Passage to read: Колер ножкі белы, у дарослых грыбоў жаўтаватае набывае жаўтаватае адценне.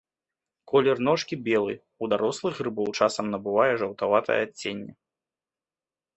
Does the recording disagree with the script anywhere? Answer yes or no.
yes